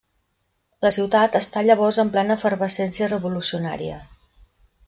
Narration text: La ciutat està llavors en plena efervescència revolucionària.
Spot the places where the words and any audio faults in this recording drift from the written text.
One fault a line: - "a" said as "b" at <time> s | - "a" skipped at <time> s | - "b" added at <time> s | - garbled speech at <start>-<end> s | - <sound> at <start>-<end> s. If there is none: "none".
none